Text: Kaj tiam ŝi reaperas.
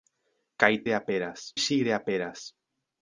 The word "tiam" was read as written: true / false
false